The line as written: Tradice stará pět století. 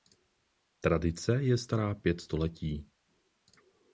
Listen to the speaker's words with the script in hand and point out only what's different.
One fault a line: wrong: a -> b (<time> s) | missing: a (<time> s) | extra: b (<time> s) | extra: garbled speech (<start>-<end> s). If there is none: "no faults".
extra: je (1.4 s)